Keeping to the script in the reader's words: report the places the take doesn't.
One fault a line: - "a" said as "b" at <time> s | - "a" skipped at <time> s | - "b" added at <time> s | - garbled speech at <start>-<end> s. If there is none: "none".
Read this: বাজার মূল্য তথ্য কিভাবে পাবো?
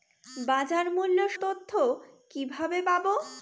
none